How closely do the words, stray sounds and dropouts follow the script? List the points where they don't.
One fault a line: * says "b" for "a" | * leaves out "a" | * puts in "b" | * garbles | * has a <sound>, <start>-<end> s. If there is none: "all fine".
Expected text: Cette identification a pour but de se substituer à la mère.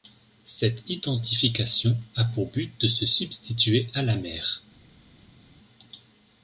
all fine